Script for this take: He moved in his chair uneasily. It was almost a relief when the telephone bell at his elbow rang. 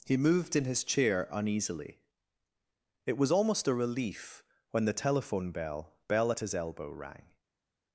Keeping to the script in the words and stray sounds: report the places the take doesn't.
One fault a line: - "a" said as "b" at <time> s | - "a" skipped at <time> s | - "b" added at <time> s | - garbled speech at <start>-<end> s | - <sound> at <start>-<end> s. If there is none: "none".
- "bell" added at 6.1 s